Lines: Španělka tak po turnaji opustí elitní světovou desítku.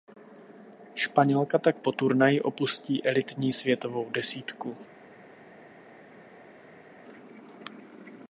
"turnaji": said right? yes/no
yes